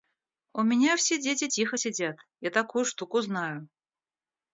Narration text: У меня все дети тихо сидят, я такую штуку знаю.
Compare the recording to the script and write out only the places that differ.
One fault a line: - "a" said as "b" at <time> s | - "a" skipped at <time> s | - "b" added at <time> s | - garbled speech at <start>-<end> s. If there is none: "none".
none